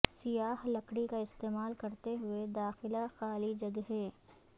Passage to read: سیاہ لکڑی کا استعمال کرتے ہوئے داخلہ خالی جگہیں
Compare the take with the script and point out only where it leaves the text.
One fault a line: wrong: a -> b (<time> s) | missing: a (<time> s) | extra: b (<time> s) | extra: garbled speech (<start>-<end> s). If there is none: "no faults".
no faults